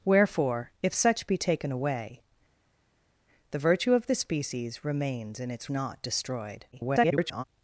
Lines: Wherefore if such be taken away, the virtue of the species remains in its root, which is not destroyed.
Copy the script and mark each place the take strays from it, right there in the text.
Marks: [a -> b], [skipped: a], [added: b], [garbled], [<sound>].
Wherefore if such be taken away, the virtue of the species remains in its [skipped: root, which is] not destroyed. [garbled]